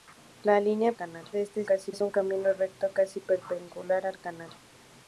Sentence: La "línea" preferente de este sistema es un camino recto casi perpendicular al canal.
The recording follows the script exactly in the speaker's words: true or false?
false